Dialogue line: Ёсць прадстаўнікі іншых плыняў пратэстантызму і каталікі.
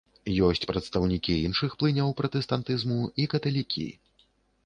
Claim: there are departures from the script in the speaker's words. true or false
false